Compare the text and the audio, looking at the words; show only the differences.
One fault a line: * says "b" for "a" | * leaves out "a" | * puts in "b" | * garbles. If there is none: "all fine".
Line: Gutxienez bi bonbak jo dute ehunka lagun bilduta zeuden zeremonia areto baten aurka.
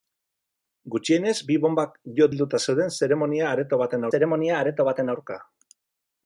* says "bilduta zeuden zeremonia areto baten" for "dute ehunka lagun bilduta zeuden"